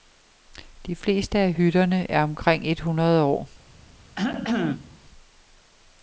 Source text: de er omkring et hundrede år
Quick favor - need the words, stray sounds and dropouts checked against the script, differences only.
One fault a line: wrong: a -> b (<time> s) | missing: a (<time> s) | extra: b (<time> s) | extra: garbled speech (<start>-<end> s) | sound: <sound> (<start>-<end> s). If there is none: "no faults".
extra: fleste af hytterne (0.9 s)
sound: cough (4.2-5.0 s)